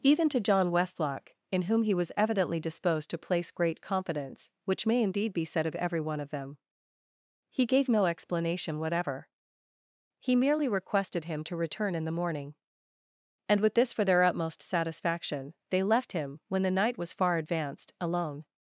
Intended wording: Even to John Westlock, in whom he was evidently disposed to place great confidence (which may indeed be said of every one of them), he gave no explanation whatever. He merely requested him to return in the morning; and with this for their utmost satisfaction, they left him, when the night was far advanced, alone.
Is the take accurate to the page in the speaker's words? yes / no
yes